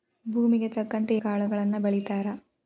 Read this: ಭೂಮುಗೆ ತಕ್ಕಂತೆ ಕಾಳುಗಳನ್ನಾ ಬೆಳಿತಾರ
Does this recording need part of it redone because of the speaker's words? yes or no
no